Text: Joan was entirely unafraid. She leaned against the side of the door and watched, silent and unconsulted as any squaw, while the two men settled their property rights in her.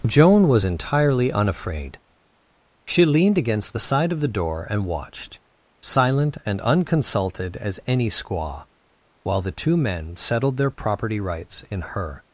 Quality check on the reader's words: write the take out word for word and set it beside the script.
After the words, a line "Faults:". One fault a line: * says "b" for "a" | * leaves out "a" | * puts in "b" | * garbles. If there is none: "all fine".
Joan was entirely unafraid. She leaned against the side of the door and watched, silent and unconsulted as any squaw, while the two men settled their property rights in her.
Faults:
all fine